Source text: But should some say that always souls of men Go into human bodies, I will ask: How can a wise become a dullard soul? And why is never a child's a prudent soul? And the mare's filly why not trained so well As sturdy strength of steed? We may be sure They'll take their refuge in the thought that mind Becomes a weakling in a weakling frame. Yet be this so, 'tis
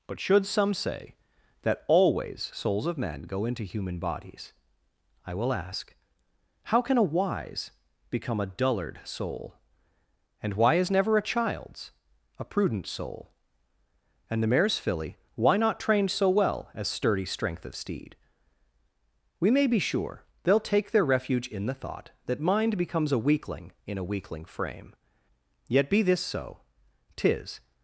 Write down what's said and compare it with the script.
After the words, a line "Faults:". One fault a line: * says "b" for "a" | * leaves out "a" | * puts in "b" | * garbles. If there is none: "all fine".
But should some say that always souls of men Go into human bodies, I will ask: How can a wise become a dullard soul? And why is never a child's a prudent soul? And the mare's filly why not trained so well As sturdy strength of steed? We may be sure They'll take their refuge in the thought that mind Becomes a weakling in a weakling frame. Yet be this so, 'tis
Faults:
all fine